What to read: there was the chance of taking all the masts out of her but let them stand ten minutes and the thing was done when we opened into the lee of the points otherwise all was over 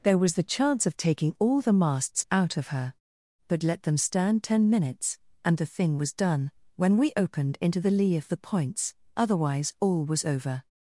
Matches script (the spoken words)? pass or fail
pass